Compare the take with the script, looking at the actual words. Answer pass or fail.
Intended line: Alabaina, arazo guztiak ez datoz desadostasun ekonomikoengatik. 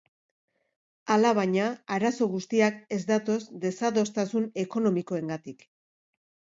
pass